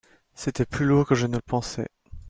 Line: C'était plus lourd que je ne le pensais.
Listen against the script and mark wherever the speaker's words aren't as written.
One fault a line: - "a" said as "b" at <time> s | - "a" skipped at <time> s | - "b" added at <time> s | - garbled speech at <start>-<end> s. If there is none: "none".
none